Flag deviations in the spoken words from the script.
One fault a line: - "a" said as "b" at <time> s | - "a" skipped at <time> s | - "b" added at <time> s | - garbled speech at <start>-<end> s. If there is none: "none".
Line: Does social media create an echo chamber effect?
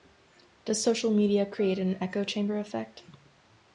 none